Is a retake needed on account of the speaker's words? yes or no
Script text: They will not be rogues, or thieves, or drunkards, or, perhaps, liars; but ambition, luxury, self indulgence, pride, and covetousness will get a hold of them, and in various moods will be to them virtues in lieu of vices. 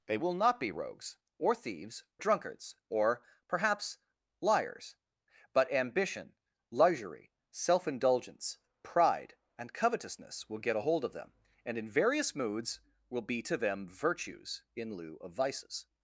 yes